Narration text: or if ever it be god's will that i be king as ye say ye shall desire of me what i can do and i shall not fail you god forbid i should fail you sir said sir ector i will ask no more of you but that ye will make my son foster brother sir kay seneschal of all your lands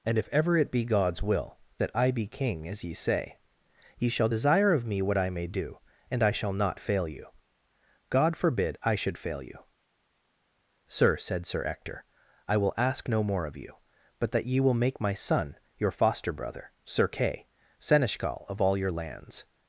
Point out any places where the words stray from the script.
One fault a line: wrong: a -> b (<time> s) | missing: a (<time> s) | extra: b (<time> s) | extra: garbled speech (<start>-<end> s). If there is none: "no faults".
wrong: or -> and (0.1 s)
wrong: can -> may (5.3 s)
extra: your (15.8 s)